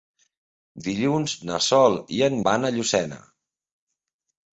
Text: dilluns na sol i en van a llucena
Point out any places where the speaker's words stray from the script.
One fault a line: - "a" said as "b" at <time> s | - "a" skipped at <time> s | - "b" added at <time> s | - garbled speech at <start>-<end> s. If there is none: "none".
none